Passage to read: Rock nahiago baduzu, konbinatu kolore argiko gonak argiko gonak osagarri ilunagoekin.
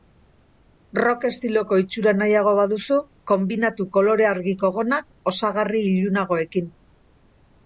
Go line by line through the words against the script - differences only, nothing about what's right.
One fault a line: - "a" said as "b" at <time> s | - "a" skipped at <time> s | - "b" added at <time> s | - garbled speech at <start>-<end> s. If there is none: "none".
- "estiloko itxura" added at 1.3 s
- "argiko gonak" skipped at 5.1 s